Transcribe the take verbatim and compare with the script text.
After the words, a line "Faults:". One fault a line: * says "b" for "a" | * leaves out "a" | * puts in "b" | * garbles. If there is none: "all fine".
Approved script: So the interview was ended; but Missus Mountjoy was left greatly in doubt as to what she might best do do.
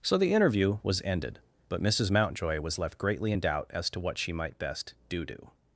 So the interview was ended; but Missus Mountjoy was left greatly in doubt as to what she might best do do.
Faults:
all fine